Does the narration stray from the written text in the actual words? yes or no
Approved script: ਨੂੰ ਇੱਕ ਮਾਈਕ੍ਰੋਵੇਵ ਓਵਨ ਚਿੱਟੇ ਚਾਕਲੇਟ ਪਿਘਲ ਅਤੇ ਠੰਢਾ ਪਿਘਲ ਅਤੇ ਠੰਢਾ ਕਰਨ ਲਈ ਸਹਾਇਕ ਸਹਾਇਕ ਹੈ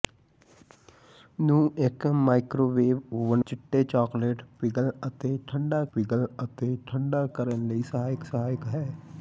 no